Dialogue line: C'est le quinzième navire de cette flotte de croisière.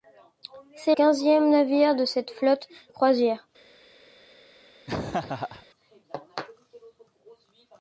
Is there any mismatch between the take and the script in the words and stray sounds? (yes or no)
yes